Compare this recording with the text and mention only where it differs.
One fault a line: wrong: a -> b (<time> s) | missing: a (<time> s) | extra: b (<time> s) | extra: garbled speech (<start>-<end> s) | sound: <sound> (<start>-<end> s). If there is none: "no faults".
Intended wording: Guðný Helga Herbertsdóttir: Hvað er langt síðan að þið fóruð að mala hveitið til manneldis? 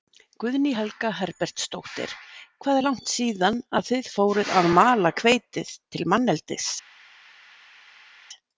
no faults